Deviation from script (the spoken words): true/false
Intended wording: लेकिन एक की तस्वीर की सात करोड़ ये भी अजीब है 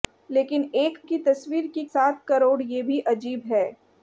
false